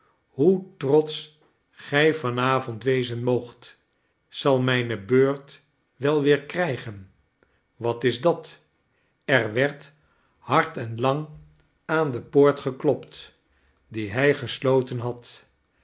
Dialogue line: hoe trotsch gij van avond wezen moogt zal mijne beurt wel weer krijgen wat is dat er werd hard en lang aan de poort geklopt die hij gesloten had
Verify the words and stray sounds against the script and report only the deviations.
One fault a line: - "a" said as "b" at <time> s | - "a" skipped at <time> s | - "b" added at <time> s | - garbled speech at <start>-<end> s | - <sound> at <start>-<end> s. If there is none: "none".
none